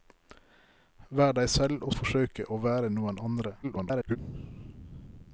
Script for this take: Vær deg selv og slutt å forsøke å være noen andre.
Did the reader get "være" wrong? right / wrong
right